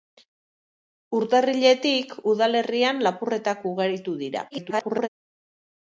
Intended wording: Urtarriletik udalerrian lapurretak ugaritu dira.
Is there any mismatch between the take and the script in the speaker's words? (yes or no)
yes